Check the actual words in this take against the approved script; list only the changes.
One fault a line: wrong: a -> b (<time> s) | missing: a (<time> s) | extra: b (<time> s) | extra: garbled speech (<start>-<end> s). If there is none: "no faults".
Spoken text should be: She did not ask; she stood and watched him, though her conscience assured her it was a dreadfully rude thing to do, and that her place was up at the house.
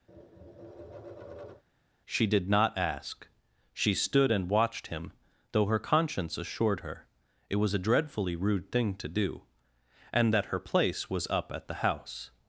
no faults